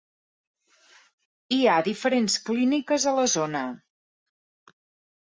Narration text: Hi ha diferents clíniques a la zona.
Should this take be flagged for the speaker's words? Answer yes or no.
no